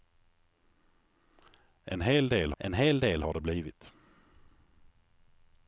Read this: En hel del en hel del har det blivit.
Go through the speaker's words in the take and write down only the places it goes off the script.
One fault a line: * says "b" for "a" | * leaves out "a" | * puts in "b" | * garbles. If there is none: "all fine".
all fine